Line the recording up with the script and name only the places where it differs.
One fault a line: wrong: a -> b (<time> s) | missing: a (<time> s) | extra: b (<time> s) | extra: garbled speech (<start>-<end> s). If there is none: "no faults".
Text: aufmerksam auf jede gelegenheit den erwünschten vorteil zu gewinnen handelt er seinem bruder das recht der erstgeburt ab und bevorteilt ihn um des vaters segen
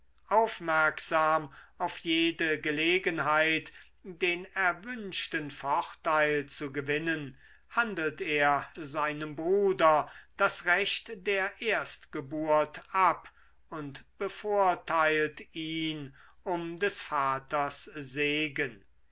no faults